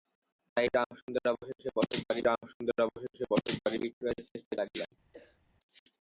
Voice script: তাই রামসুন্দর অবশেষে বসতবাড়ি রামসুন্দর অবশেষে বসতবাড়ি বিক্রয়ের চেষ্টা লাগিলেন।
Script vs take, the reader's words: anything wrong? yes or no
no